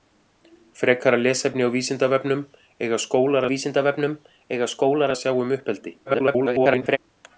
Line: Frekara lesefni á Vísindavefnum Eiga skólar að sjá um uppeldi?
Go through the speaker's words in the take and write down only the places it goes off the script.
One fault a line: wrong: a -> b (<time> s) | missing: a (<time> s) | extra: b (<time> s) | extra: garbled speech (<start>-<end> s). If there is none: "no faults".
extra: Vísindavefnum Eiga skólar (3.5 s)
extra: garbled speech (6.0-7.0 s)